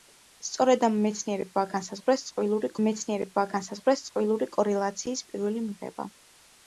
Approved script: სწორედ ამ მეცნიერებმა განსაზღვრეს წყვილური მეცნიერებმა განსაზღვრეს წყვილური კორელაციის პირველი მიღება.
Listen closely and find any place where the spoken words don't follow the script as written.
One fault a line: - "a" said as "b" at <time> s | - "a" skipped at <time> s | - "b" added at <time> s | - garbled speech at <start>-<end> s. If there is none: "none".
none